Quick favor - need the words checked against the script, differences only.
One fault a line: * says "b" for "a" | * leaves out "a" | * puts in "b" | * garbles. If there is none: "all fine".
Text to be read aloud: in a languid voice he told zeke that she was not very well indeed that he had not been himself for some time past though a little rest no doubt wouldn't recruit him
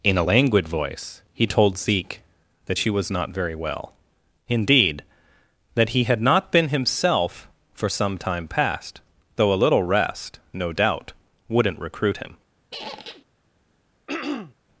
all fine